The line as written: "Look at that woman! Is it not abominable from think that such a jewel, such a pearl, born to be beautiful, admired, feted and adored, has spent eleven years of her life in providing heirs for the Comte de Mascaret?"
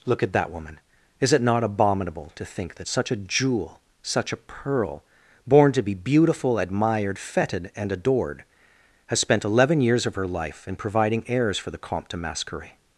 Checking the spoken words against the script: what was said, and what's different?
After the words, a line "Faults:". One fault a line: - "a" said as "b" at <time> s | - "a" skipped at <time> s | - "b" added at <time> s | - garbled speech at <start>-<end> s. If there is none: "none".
"Look at that woman! Is it not abominable to think that such a jewel, such a pearl, born to be beautiful, admired, feted and adored, has spent eleven years of her life in providing heirs for the Comte de Mascaret?"
Faults:
- "from" said as "to" at 2.3 s